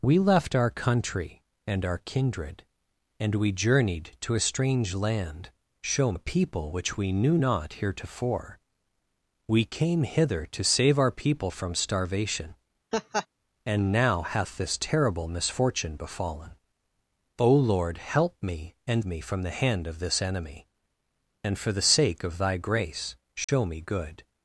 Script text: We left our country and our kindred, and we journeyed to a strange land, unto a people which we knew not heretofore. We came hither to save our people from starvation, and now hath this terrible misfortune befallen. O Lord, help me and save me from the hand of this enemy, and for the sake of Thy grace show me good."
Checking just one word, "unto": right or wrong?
wrong